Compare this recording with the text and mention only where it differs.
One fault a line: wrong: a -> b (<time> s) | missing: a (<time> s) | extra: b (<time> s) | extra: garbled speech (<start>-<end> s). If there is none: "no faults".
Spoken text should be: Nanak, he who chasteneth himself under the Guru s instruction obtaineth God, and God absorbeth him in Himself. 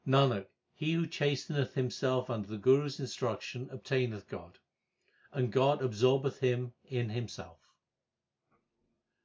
no faults